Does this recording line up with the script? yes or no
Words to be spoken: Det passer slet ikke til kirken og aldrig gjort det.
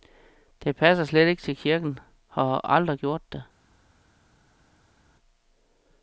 no